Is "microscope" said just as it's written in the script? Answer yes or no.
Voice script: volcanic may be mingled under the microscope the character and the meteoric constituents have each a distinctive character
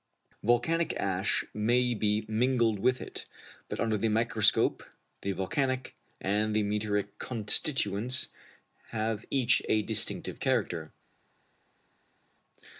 yes